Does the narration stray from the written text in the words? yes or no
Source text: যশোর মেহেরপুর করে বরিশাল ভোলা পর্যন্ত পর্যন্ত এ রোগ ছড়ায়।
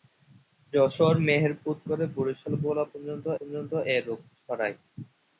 no